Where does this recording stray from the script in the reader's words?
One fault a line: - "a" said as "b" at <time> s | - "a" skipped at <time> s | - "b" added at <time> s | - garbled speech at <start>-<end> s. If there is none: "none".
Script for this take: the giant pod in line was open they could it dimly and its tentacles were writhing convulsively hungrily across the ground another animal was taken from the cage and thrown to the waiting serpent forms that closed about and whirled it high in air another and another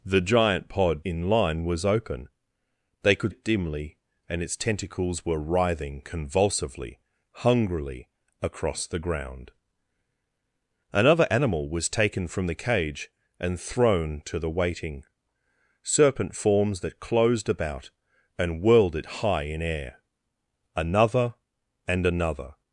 none